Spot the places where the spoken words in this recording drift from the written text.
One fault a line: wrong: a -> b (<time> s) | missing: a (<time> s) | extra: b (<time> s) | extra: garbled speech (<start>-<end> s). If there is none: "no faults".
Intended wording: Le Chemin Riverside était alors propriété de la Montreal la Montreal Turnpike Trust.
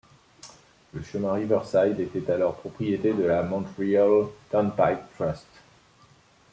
missing: la Montreal (4.2 s)